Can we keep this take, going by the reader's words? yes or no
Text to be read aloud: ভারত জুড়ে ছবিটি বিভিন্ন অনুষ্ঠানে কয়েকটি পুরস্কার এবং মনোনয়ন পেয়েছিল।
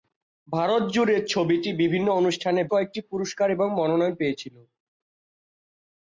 yes